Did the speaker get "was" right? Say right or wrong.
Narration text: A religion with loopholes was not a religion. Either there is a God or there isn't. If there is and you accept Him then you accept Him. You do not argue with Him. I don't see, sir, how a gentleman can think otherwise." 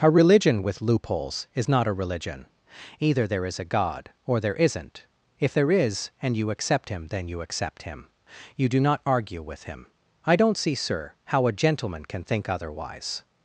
wrong